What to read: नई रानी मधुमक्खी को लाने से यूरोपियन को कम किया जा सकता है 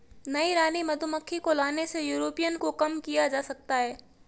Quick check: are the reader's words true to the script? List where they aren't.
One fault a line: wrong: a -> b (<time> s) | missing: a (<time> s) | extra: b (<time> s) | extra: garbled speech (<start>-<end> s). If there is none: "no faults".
no faults